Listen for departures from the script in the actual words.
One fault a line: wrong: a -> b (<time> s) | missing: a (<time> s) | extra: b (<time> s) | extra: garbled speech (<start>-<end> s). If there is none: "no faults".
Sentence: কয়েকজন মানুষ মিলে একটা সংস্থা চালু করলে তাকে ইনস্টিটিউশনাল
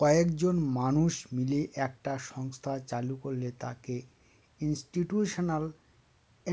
no faults